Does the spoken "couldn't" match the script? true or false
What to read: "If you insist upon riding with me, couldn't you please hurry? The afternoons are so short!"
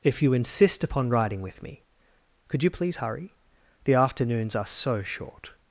false